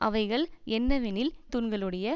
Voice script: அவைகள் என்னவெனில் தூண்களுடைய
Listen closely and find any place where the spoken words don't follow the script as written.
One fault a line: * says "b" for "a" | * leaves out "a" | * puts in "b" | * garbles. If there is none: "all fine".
all fine